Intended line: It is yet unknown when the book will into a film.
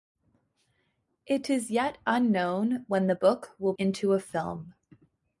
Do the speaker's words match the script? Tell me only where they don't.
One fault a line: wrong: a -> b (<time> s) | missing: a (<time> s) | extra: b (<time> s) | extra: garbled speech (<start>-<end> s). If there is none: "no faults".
no faults